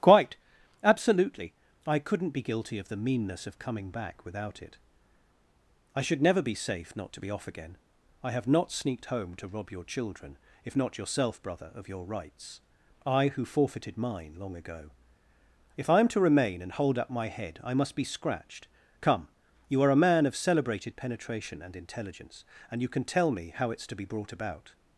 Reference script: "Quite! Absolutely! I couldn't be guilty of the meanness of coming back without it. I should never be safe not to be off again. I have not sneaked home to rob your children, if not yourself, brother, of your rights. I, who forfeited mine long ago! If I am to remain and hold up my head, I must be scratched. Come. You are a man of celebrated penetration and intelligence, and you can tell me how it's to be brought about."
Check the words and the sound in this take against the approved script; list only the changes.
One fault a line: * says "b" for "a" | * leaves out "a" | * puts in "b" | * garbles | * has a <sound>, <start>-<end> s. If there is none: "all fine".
all fine